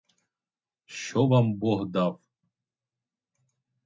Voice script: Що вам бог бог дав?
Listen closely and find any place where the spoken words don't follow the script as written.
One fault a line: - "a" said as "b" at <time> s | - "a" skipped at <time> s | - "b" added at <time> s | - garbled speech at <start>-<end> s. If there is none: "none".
- "бог" skipped at 1.9 s